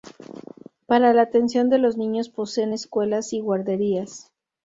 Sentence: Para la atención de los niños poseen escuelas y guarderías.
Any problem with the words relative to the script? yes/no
no